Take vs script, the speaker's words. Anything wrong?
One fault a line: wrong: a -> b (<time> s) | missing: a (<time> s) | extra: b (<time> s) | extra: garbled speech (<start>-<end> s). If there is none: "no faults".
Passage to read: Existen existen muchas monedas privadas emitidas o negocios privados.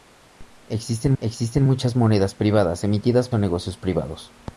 no faults